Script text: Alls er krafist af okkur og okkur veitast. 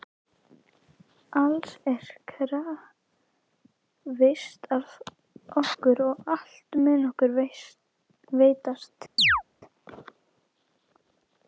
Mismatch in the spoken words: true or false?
true